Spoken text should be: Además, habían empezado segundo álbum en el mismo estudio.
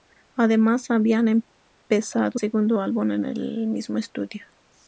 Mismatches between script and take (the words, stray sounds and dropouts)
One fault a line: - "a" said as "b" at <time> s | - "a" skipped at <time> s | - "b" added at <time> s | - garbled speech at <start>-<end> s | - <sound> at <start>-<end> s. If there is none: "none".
none